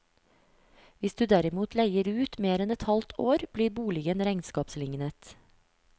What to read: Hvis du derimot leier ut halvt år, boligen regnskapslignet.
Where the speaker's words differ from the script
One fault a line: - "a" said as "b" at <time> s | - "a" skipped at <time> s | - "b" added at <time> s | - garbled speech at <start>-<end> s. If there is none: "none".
- "mer enn et" added at 2.5 s
- "blir" added at 3.6 s